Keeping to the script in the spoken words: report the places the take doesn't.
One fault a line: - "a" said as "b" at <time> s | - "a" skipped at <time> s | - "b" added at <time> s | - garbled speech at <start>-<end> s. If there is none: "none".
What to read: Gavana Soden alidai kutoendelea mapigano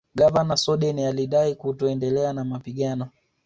- "na" added at 2.3 s